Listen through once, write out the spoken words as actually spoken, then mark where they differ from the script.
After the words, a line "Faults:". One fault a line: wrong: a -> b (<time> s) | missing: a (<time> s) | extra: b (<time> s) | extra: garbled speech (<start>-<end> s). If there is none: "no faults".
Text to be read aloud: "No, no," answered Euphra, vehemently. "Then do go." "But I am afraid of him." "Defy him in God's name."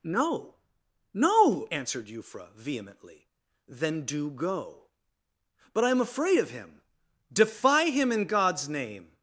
"No, no," answered Euphra, vehemently. "Then do go." "But I am afraid of him." "Defy him in God's name."
Faults:
no faults